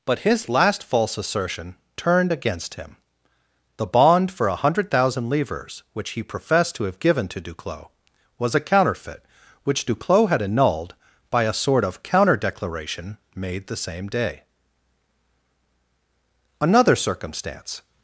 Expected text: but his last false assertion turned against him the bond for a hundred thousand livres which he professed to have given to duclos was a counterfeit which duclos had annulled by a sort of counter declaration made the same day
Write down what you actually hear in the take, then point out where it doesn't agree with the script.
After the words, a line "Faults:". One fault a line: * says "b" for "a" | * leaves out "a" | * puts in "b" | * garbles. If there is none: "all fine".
but his last false assertion turned against him the bond for a hundred thousand livres which he professed to have given to duclos was a counterfeit which duclos had annulled by a sort of counter declaration made the same day another circumstance
Faults:
* puts in "another circumstance"